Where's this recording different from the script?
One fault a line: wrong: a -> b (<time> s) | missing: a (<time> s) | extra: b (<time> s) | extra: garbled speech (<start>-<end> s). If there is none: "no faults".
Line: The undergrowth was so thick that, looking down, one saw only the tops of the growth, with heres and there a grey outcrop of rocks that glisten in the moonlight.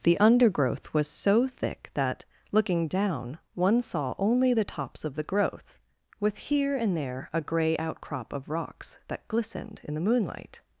wrong: heres -> here (6.4 s)
wrong: glisten -> glistened (9.3 s)